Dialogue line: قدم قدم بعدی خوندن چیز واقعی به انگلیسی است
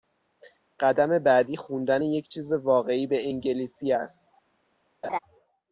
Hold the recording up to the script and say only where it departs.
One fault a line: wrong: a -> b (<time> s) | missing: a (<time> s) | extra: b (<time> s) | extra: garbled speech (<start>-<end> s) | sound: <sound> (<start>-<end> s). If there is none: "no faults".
missing: قدم (1.2 s)
extra: یک (2.0 s)
sound: laugh (5.0-5.2 s)